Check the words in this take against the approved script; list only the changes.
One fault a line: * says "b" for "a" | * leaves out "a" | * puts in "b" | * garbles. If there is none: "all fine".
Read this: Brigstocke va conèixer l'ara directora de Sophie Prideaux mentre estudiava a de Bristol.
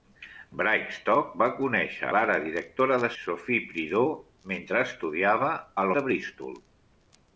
all fine